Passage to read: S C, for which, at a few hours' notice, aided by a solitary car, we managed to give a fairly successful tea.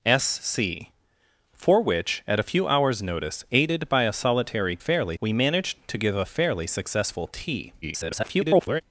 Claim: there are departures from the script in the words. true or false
true